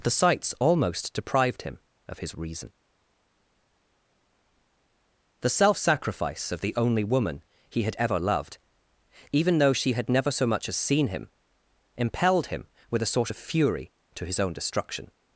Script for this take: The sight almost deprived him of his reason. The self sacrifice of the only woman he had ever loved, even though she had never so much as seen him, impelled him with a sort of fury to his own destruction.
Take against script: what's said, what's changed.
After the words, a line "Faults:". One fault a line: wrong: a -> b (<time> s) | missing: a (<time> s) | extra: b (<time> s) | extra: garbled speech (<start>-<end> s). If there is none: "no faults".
The sights almost deprived him of his reason. The self sacrifice of the only woman he had ever loved, even though she had never so much as seen him, impelled him with a sort of fury to his own destruction.
Faults:
wrong: sight -> sights (0.1 s)